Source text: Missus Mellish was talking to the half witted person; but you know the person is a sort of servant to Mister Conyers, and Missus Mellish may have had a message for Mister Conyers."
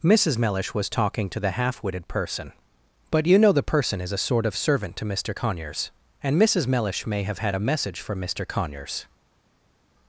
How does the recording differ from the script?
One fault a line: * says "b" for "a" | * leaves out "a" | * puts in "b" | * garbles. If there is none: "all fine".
all fine